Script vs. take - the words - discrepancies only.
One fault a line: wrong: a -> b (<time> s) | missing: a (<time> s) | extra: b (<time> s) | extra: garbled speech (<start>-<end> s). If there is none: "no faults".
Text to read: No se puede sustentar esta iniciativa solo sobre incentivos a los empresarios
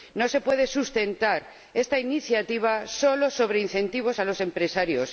no faults